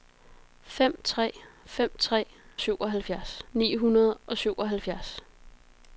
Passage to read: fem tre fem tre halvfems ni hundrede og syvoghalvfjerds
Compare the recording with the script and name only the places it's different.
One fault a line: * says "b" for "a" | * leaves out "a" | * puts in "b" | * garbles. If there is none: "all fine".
* says "syvoghalvfjerds" for "halvfems"